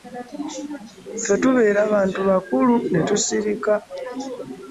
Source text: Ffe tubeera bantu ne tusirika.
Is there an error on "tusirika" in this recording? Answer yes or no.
no